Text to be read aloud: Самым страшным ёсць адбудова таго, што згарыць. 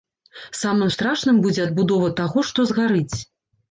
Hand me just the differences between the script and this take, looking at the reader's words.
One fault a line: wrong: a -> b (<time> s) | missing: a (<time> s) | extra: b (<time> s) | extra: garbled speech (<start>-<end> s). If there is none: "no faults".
wrong: ёсць -> будзе (1.5 s)